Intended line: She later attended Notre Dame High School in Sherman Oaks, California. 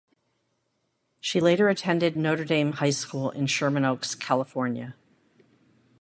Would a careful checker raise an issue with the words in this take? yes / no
no